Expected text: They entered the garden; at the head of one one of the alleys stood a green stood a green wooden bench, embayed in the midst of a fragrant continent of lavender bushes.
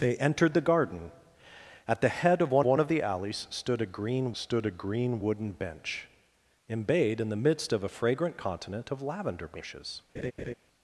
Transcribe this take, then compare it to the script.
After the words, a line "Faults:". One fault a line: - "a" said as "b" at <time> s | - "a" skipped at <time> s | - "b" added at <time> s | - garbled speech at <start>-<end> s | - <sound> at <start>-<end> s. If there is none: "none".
They entered the garden; at the head of one one of the alleys stood a green stood a green wooden bench, embayed in the midst of a fragrant continent of lavender bushes.
Faults:
- laugh at 10.1-10.5 s